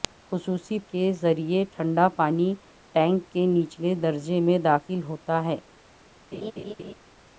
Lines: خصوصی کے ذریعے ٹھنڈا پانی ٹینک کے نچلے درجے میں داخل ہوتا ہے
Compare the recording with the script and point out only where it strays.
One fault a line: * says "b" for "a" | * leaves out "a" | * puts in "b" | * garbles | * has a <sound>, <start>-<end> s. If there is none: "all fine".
* has a laugh, 6.3-6.9 s